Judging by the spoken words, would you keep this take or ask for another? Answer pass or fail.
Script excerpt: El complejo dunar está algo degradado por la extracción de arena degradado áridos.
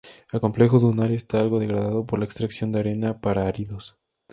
fail